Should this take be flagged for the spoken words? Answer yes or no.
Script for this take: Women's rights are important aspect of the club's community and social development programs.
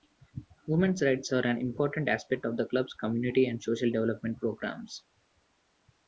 yes